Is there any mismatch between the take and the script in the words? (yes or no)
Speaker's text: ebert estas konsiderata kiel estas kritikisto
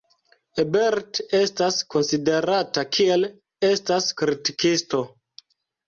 no